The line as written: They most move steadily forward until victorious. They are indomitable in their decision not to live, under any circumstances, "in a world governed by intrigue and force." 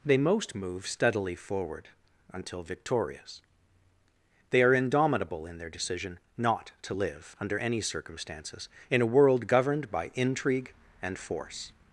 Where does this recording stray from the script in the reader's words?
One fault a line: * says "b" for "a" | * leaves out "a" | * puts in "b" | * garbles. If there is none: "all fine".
all fine